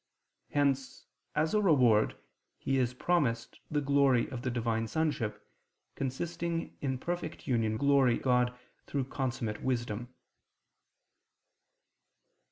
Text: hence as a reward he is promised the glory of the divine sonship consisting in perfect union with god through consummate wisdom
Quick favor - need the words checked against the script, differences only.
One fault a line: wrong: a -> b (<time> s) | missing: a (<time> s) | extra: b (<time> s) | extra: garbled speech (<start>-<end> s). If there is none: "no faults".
wrong: with -> glory (7.7 s)